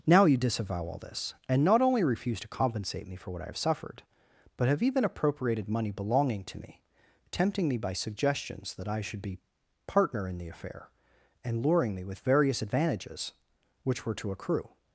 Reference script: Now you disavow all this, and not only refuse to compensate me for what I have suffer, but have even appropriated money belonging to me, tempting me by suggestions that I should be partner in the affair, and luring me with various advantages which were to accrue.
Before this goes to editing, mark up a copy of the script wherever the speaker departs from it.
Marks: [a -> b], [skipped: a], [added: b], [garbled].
Now you disavow all this, and not only refuse to compensate me for what I have [suffer, -> suffered] but have even appropriated money belonging to me, tempting me by suggestions that I should be partner in the affair, and luring me with various advantages which were to accrue.